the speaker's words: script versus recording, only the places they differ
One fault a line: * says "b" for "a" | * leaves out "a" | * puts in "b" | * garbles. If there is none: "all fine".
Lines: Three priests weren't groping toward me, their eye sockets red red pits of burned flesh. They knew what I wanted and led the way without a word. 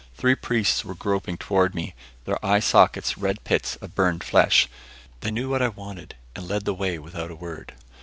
* says "were" for "weren't"
* leaves out "red"